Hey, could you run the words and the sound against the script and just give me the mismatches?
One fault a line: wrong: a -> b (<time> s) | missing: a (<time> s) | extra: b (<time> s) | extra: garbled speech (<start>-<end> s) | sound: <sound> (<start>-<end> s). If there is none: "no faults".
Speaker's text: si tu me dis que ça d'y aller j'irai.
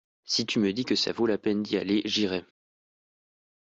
extra: vaut la peine (1.1 s)